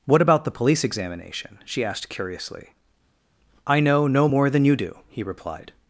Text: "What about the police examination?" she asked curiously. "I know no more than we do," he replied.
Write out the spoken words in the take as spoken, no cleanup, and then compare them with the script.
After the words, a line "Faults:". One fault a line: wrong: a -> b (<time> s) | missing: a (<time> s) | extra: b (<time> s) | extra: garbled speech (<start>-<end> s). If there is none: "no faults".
"What about the police examination?" she asked curiously. "I know no more than you do," he replied.
Faults:
wrong: we -> you (4.6 s)